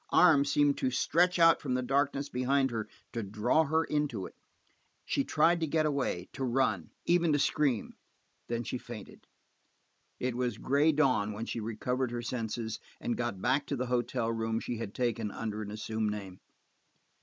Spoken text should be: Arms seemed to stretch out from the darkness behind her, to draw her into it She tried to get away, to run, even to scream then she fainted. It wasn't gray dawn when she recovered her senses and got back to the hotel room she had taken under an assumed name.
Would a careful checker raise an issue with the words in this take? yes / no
yes